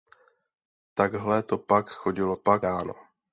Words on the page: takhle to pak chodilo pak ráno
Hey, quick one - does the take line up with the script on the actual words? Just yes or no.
yes